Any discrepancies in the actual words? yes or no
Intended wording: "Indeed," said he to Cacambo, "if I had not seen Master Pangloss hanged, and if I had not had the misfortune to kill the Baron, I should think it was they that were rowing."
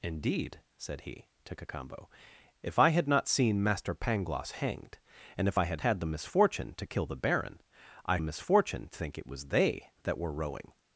yes